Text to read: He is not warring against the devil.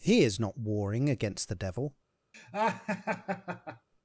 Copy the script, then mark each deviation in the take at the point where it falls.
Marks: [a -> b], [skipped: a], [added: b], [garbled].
He is not warring against the devil.